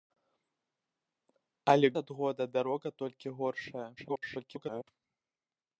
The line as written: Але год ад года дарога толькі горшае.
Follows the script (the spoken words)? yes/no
no